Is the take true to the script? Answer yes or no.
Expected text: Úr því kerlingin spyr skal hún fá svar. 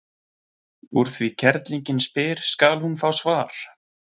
yes